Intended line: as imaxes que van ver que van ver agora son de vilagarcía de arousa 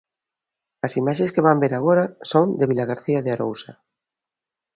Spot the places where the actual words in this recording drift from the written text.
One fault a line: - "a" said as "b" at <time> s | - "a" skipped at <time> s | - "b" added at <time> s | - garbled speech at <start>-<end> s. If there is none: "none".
- "que van ver" skipped at 1.7 s